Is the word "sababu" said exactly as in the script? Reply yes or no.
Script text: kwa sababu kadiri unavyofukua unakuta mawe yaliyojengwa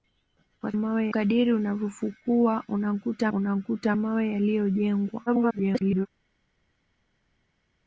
no